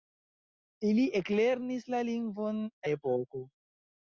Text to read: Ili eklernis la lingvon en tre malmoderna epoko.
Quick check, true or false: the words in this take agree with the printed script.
false